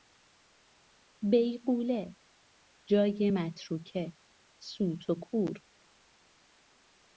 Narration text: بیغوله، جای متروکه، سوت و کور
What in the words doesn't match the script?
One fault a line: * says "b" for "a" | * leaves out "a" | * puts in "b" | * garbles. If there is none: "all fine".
all fine